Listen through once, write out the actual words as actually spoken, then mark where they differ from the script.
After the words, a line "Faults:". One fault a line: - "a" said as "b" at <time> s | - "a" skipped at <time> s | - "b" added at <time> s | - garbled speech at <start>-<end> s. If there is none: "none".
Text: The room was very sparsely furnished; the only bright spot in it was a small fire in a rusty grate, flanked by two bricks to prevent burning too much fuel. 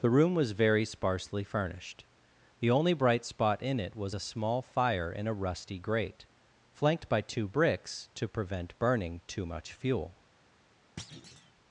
The room was very sparsely furnished; the only bright spot in it was a small fire in a rusty grate, flanked by two bricks to prevent burning too much fuel.
Faults:
none